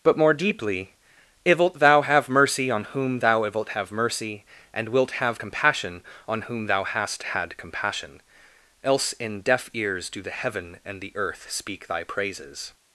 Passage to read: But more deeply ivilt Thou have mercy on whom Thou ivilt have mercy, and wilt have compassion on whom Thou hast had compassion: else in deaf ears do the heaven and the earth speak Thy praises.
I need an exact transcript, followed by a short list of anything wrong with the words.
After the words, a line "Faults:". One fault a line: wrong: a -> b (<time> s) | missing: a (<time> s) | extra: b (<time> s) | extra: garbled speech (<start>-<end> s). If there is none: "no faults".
But more deeply ivilt Thou have mercy on whom Thou ivilt have mercy, and wilt have compassion on whom Thou hast had compassion: else in deaf ears do the heaven and the earth speak Thy praises.
Faults:
no faults